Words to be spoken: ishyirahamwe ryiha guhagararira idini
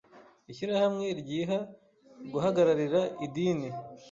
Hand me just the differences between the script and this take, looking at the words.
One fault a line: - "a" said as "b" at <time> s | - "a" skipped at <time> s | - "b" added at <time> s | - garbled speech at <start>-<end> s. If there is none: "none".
none